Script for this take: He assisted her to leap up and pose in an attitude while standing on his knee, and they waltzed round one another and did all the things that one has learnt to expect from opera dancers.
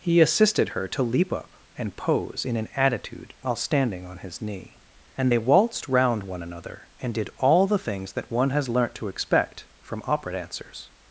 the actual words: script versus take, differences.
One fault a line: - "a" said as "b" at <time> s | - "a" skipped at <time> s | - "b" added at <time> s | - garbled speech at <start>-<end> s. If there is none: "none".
none